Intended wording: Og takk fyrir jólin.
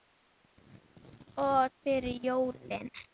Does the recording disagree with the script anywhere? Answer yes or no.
yes